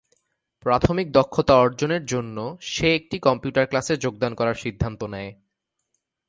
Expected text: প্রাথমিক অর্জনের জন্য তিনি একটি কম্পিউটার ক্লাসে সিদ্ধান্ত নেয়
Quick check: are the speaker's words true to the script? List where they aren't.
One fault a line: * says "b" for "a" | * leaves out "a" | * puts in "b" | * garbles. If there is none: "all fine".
* puts in "দক্ষতা"
* says "সে" for "তিনি"
* puts in "যোগদান করার"